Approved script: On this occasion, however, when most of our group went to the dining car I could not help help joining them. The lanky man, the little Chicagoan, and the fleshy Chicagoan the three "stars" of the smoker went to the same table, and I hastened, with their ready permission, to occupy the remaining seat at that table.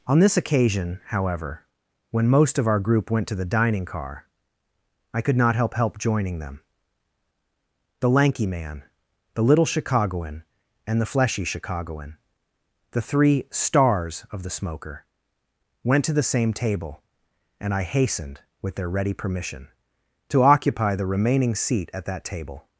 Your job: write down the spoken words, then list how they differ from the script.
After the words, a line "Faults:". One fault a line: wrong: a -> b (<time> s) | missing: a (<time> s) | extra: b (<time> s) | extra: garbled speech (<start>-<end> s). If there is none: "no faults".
On this occasion, however, when most of our group went to the dining car I could not help help joining them. The lanky man, the little Chicagoan, and the fleshy Chicagoan the three "stars" of the smoker went to the same table, and I hastened, with their ready permission, to occupy the remaining seat at that table.
Faults:
no faults